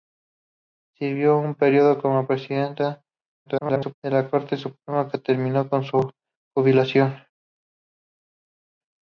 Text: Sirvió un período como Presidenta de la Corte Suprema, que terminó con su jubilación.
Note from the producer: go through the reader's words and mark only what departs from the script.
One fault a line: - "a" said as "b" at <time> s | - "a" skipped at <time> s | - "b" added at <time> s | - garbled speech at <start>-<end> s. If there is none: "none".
- garbled speech at 3.5-3.9 s